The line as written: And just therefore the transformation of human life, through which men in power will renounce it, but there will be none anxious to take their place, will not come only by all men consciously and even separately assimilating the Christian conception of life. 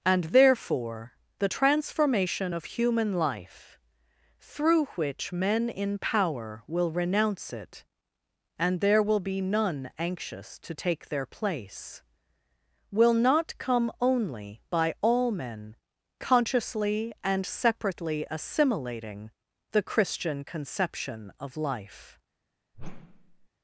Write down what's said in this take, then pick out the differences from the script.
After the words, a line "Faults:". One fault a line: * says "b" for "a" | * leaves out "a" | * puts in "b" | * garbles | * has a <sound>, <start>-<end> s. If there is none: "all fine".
And therefore the transformation of human life, through which men in power will renounce it, and there will be none anxious to take their place, will not come only by all men consciously and separately assimilating the Christian conception of life.
Faults:
* leaves out "just"
* says "and" for "but"
* leaves out "even"
* has a whoosh, 22.7-23.5 s